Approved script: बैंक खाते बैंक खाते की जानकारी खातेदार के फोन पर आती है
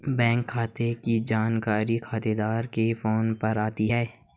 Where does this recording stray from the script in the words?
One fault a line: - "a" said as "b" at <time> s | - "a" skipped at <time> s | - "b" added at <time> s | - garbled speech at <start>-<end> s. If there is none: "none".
- "बैंक खाते" skipped at 0.9 s